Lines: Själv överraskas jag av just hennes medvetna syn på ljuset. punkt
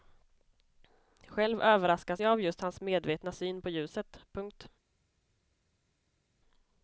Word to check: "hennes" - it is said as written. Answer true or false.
false